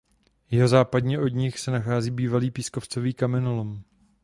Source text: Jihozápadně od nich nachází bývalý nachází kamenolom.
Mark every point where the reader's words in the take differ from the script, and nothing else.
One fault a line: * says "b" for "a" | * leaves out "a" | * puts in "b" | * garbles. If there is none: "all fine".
* puts in "se"
* says "pískovcový" for "nachází"